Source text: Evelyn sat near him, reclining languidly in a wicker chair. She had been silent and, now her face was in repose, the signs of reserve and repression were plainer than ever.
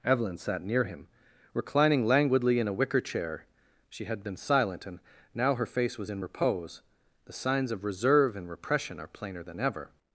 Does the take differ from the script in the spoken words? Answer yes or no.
yes